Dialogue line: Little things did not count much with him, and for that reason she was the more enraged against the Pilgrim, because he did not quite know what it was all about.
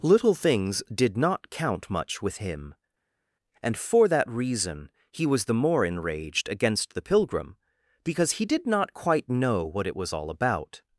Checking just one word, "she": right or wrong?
wrong